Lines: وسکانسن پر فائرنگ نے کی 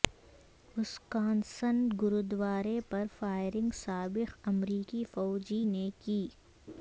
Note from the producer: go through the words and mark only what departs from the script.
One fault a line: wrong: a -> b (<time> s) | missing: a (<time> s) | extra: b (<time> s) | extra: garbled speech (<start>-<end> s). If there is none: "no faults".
extra: گوردوارے (2.0 s)
extra: سابق امریکی فوجی (3.8 s)